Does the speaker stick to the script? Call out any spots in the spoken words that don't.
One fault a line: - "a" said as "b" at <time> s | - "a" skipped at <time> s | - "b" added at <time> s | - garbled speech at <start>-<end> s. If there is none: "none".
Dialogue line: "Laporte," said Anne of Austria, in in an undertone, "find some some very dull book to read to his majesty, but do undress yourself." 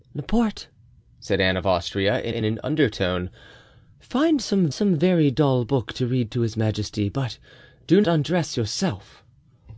none